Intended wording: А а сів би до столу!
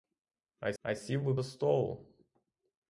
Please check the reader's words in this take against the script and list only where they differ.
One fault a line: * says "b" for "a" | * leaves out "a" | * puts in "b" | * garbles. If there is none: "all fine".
all fine